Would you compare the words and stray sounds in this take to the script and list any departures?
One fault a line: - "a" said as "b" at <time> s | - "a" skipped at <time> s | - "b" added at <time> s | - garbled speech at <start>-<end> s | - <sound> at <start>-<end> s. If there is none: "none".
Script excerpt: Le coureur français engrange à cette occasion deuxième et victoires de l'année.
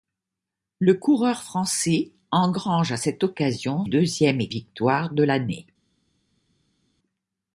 none